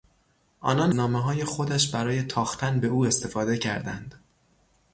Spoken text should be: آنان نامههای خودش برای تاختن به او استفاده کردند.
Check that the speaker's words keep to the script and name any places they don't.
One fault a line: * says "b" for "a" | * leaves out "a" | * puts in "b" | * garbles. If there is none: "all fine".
all fine